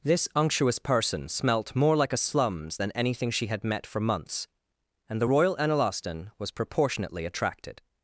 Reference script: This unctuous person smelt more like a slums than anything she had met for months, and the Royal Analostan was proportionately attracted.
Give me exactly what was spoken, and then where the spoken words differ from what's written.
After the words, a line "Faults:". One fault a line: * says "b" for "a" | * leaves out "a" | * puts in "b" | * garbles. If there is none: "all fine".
This unctuous person smelt more like a slums than anything she had met for months, and the Royal Analostan was proportionately attracted.
Faults:
all fine